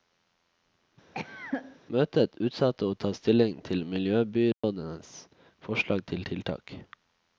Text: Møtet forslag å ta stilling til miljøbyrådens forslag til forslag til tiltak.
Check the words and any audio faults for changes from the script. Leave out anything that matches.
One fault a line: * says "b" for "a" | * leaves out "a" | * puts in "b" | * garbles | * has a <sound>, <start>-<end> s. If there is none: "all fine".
* has a cough, 1.1-1.8 s
* says "utsatte" for "forslag"
* has a dropout, 4.5-4.6 s
* leaves out "forslag til"